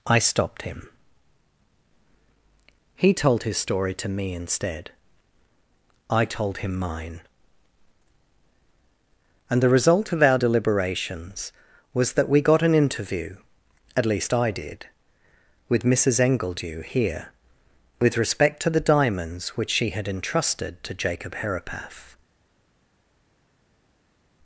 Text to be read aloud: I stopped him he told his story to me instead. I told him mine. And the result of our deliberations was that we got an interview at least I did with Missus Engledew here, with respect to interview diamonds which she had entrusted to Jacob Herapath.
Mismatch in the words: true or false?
true